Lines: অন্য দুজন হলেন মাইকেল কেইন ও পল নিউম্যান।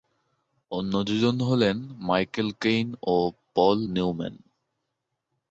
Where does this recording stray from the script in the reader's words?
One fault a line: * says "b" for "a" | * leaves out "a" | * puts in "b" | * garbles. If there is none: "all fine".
all fine